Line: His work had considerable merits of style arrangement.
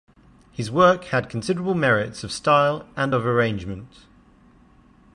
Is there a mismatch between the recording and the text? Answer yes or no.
yes